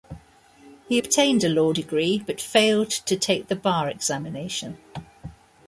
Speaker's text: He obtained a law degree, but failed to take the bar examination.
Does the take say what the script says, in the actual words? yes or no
yes